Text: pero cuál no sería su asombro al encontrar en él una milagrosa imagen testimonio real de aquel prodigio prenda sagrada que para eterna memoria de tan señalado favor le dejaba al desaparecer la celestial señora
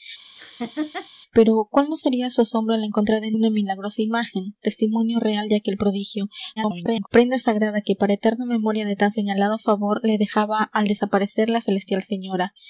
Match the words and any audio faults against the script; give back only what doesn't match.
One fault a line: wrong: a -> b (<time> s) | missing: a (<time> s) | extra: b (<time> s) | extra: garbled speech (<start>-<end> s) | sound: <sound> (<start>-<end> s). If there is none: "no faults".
sound: laugh (0.4-1.1 s)
missing: él (3.4 s)
extra: garbled speech (6.6-7.1 s)